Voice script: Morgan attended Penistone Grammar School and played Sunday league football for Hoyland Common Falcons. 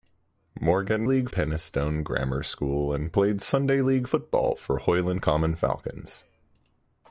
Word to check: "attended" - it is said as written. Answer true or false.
false